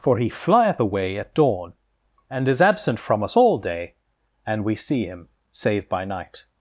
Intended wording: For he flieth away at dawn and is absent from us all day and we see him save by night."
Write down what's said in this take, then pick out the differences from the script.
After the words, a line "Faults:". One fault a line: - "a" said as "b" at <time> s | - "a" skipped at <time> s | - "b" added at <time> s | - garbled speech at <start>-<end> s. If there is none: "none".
For he flieth away at dawn and is absent from us all day and we see him save by night."
Faults:
none